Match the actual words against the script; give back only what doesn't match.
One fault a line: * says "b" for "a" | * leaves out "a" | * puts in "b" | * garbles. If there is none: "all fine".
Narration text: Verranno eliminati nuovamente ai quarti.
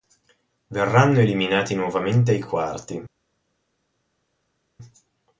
all fine